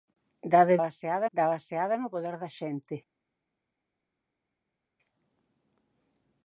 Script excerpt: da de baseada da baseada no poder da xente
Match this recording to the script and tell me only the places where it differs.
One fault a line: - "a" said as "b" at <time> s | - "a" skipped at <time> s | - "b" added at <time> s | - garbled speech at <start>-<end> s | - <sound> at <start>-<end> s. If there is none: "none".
none